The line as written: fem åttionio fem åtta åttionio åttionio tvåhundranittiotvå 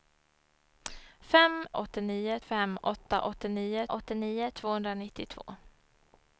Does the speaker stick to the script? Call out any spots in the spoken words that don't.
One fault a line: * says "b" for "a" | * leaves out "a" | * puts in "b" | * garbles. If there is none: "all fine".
all fine